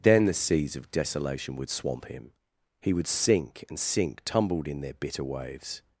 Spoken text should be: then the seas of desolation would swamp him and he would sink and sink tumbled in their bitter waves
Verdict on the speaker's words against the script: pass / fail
fail